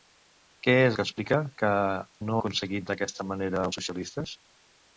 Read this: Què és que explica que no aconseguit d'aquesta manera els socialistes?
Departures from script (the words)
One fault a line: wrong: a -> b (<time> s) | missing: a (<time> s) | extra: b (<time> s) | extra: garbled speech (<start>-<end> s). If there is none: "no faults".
no faults